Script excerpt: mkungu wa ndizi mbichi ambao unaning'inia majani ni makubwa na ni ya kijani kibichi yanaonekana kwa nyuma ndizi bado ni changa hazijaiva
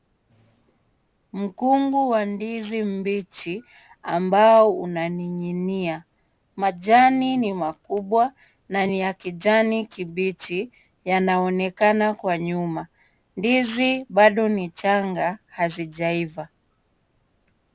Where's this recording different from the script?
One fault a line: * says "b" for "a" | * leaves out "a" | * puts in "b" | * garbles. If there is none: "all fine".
all fine